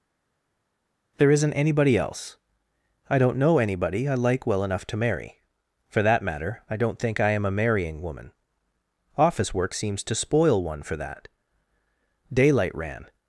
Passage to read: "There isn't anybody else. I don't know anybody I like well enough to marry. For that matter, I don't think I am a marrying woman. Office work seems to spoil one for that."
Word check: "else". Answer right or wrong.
right